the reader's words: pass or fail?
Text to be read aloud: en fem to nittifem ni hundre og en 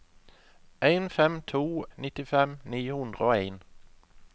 pass